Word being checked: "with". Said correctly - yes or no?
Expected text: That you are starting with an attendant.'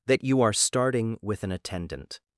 yes